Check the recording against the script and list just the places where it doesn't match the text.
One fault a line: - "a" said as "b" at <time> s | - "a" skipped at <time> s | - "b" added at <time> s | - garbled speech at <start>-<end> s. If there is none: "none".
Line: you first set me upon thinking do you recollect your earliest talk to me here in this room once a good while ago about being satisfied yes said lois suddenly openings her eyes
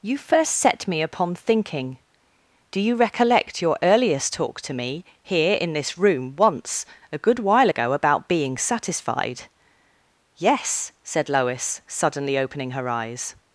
- "openings" said as "opening" at 12.4 s